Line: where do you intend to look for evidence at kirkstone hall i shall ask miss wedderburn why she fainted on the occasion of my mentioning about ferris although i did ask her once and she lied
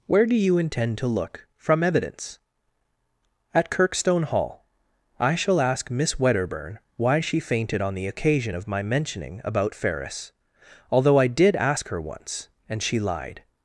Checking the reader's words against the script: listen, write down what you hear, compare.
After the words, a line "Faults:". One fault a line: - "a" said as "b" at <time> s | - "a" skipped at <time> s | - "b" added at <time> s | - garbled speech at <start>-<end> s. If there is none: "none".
where do you intend to look from evidence at kirkstone hall i shall ask miss wedderburn why she fainted on the occasion of my mentioning about ferris although i did ask her once and she lied
Faults:
- "for" said as "from" at 1.6 s